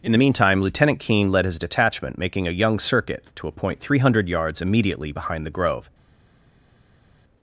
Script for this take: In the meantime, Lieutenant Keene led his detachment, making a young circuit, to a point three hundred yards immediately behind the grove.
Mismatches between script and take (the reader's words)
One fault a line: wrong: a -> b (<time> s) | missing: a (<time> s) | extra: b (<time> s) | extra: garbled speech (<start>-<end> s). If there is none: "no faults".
no faults